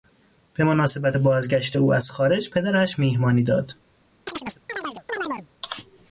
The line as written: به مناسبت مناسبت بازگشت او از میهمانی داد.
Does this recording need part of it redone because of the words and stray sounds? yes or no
yes